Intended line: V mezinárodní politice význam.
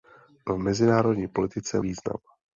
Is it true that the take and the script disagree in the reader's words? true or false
false